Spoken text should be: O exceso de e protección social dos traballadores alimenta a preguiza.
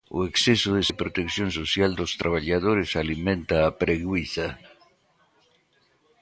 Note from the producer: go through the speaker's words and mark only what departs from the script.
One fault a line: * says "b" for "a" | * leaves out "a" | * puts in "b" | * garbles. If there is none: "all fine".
all fine